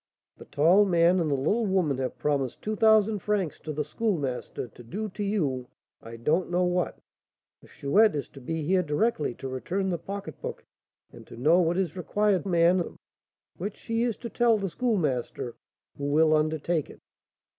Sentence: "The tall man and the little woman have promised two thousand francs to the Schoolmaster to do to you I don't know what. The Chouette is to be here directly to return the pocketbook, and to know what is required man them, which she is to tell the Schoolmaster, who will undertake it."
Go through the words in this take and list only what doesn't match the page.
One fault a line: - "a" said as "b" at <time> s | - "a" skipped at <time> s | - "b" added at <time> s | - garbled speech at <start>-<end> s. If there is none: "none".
none